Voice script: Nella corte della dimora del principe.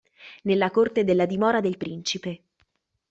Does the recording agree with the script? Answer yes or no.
yes